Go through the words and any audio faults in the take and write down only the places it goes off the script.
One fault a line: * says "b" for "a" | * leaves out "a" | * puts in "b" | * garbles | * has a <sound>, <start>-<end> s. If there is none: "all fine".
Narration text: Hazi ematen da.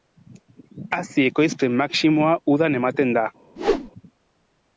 * puts in "ekoizpen maximoa udan"
* has a whoosh, 3.6-3.9 s